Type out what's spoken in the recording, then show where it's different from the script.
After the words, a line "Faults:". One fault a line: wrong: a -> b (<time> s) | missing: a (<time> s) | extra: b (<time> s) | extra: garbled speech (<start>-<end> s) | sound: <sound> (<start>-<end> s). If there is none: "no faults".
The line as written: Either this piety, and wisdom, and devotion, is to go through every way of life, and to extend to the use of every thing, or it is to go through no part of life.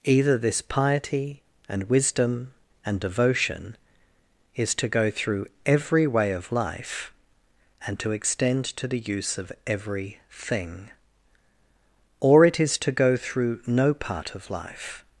Either this piety, and wisdom, and devotion, is to go through every way of life, and to extend to the use of every thing, or it is to go through no part of life.
Faults:
no faults